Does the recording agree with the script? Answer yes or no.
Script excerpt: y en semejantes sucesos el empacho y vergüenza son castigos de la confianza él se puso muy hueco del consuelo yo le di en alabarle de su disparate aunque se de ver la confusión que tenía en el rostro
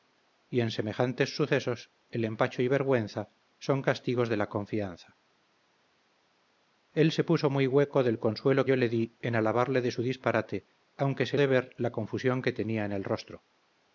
yes